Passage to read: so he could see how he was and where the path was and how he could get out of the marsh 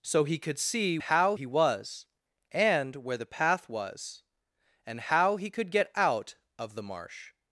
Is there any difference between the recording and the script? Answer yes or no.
no